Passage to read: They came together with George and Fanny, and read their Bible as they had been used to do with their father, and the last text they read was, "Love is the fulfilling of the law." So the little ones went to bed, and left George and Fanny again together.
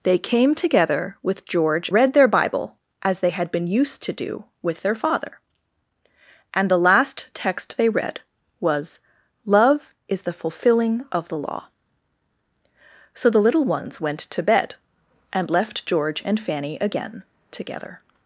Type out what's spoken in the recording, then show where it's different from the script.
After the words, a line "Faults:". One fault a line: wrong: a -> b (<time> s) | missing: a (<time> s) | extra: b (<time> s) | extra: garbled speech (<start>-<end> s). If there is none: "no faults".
They came together with George read their Bible as they had been used to do with their father, and the last text they read was, "Love is the fulfilling of the law." So the little ones went to bed, and left George and Fanny again together.
Faults:
missing: and Fanny and (1.9 s)